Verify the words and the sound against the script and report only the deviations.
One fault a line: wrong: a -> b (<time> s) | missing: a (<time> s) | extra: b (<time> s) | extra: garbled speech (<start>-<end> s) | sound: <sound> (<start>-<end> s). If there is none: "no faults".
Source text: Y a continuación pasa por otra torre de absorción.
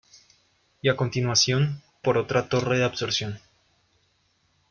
missing: pasa (1.8 s)